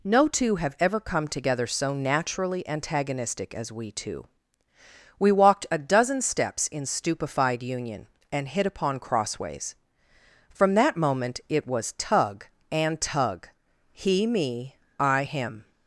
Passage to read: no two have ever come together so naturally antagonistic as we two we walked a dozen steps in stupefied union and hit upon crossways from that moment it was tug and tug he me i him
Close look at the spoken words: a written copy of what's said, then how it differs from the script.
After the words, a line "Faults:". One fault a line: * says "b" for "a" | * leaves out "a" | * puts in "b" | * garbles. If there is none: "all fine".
no two have ever come together so naturally antagonistic as we two we walked a dozen steps in stupefied union and hit upon crossways from that moment it was tug and tug he me i him
Faults:
all fine